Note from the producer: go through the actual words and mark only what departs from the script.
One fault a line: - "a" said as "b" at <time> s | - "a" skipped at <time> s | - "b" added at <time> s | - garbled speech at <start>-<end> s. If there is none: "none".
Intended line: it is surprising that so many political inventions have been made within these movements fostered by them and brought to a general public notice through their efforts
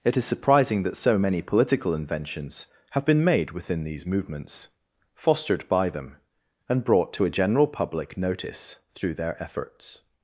none